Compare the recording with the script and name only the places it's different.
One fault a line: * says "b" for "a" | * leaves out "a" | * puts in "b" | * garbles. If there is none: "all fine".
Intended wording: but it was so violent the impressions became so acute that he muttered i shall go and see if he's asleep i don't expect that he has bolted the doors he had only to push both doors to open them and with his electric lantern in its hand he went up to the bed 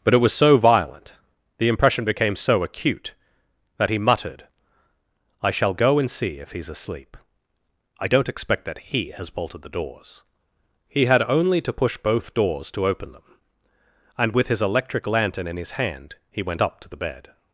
* says "impression" for "impressions"
* says "his" for "its"